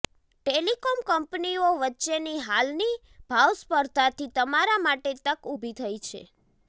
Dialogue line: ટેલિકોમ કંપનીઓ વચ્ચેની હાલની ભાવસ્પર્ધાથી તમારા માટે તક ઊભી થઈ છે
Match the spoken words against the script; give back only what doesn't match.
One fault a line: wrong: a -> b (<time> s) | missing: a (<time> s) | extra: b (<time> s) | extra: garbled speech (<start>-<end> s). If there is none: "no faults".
no faults